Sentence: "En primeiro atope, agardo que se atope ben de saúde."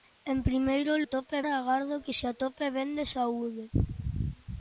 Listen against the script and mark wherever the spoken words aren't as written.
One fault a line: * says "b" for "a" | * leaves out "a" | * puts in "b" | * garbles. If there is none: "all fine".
all fine